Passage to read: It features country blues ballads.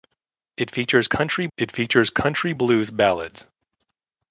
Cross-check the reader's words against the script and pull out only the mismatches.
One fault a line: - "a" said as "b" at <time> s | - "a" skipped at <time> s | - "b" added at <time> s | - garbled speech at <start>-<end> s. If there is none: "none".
- "it features country" added at 1.6 s